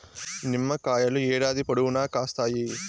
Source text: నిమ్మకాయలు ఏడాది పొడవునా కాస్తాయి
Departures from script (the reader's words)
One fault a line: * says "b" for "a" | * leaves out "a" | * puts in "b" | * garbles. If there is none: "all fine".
all fine